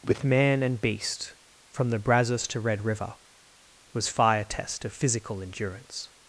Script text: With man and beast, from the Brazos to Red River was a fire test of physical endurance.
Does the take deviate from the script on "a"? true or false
true